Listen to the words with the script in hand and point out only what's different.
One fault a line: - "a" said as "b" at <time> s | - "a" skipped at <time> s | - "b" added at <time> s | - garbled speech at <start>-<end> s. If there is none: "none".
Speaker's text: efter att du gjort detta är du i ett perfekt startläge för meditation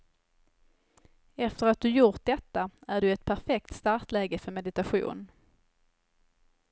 none